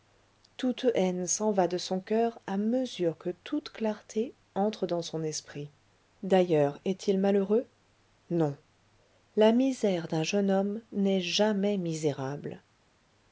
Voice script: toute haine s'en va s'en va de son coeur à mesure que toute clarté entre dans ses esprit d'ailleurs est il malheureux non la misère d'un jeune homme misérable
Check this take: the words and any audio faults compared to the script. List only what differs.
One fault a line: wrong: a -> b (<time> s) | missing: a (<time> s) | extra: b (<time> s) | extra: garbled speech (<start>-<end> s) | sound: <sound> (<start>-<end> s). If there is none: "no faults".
missing: s'en va (1.7 s)
wrong: ses -> son (5.0 s)
extra: n'est jamais (10.9 s)